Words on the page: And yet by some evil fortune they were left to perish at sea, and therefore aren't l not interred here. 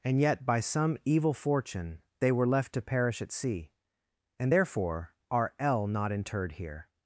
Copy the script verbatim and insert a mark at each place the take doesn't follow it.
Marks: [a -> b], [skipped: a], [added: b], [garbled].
And yet by some evil fortune they were left to perish at sea, and therefore [aren't -> are] l not interred here.